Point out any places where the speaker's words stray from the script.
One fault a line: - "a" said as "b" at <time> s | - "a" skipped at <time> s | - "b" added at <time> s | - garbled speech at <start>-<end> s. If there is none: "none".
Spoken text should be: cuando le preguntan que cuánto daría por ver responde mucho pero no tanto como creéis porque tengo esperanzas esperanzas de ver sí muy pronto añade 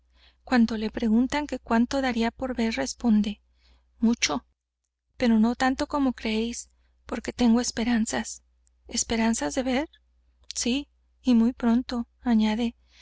- "y" added at 11.2 s